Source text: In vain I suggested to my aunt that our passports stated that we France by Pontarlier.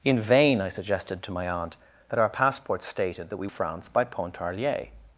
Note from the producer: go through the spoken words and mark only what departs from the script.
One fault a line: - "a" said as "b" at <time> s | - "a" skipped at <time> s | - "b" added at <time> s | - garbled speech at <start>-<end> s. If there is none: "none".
none